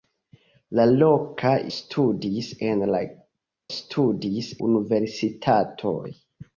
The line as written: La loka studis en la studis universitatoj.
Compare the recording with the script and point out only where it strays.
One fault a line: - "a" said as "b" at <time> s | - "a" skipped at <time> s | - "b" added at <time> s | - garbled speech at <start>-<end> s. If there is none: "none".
none